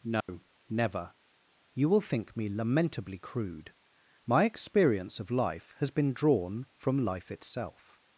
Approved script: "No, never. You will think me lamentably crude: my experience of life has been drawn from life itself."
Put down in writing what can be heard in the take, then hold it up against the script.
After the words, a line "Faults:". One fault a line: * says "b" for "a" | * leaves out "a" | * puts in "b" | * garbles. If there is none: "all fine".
"No, never. You will think me lamentably crude: my experience of life has been drawn from life itself."
Faults:
all fine